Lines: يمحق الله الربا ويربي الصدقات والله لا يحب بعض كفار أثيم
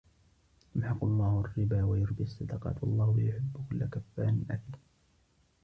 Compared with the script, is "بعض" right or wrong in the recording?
wrong